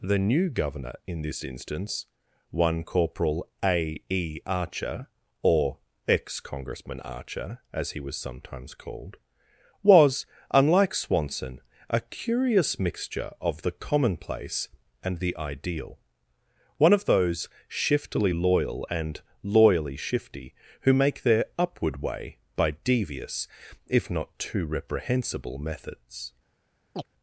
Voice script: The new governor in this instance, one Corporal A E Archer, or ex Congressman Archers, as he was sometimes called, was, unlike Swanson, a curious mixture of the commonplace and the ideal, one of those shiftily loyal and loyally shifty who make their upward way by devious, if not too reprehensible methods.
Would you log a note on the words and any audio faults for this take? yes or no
yes